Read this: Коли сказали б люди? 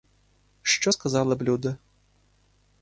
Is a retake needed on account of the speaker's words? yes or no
yes